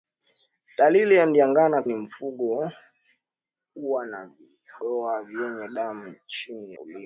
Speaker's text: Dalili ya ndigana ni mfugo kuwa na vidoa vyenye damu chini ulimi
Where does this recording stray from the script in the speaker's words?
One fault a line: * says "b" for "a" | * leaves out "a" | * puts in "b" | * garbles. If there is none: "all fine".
all fine